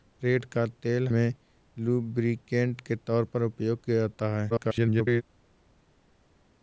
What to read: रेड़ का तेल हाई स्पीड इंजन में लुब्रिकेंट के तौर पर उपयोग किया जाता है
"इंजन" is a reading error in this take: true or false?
true